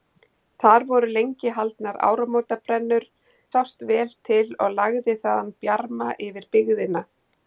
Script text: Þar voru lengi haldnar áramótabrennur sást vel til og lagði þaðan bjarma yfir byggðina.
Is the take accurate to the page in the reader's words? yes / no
yes